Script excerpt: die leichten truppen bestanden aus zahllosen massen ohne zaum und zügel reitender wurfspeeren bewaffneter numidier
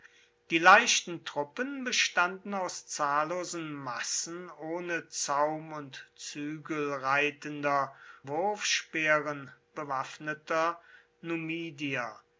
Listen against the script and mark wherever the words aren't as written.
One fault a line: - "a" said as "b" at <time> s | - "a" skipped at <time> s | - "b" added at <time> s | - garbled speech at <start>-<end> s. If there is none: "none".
none